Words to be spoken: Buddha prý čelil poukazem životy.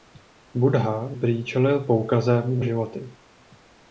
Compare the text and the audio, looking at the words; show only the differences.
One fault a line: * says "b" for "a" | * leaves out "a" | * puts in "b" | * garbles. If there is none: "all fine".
all fine